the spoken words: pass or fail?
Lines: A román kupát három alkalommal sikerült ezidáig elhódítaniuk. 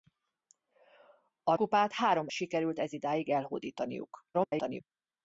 fail